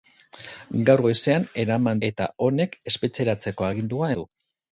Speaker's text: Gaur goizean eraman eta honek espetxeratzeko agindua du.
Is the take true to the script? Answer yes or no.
yes